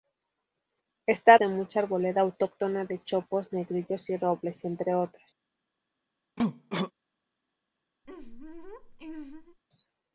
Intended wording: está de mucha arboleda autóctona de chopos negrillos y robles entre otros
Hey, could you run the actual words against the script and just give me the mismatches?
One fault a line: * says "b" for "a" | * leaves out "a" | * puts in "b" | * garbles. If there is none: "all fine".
all fine